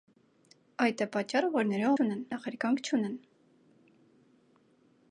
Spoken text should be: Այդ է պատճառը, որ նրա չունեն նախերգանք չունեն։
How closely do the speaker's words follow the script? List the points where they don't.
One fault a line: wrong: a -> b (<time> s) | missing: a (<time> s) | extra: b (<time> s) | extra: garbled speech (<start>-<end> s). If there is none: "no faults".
no faults